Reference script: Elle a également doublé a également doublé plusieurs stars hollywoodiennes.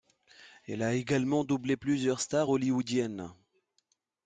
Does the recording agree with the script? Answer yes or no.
no